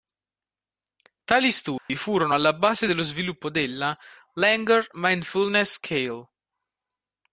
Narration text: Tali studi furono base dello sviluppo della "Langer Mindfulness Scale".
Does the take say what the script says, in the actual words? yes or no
no